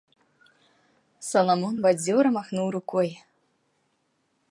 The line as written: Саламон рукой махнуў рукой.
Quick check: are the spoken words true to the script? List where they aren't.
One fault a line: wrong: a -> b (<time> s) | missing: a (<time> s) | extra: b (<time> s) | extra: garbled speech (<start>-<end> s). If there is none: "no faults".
wrong: рукой -> бадзёра (1.8 s)